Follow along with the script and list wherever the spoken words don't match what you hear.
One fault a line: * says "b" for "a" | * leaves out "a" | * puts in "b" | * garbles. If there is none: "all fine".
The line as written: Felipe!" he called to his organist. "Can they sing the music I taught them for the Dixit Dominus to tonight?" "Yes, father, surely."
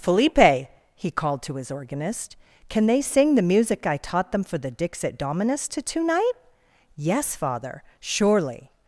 all fine